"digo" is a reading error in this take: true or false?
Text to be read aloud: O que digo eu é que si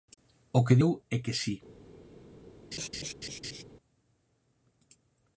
true